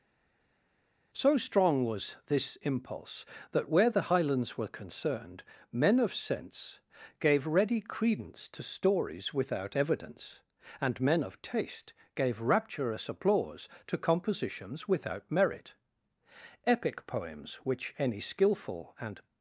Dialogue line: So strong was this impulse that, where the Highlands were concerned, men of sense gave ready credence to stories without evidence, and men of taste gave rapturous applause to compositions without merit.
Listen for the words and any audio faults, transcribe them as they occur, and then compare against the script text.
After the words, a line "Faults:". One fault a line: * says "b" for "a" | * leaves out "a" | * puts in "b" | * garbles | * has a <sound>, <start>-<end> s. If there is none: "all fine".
So strong was this impulse that, where the Highlands were concerned, men of sense gave ready credence to stories without evidence, and men of taste gave rapturous applause to compositions without merit. Epic poems, which any skilful and
Faults:
* puts in "Epic poems which any skilful and"